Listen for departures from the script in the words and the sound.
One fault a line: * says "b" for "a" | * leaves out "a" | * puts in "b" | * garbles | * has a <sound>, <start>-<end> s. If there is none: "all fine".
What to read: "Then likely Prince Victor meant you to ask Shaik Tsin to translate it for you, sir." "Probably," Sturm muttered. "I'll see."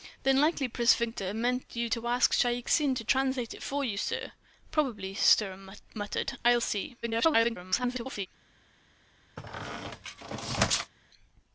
* garbles
* has a squeak, 9.4-10.9 s